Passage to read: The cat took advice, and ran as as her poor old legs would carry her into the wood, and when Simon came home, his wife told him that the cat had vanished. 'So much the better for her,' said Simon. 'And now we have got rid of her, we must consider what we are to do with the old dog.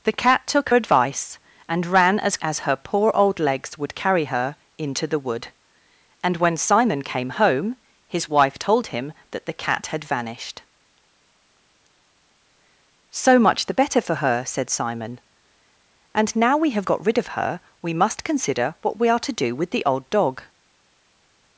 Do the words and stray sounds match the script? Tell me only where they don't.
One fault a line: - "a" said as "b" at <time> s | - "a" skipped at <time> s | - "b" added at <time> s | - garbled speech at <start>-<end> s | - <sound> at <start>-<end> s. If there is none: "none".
none